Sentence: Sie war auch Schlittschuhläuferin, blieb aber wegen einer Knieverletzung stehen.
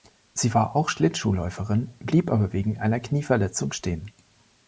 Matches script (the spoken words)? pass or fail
pass